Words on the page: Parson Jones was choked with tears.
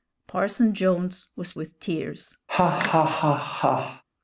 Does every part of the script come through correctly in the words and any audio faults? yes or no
no